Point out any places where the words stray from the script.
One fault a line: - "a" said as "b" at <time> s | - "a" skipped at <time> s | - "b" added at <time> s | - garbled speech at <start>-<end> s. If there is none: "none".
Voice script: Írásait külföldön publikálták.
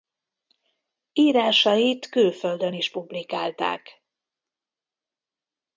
- "is" added at 2.7 s